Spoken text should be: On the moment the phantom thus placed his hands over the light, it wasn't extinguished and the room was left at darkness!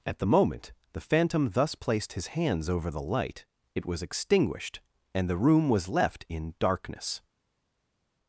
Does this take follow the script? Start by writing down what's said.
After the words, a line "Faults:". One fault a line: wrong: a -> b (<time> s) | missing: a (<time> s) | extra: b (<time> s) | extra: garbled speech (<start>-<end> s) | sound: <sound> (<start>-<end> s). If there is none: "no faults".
At the moment the phantom thus placed his hands over the light, it was extinguished and the room was left in darkness!
Faults:
wrong: On -> At (0.0 s)
wrong: wasn't -> was (3.9 s)
wrong: at -> in (6.3 s)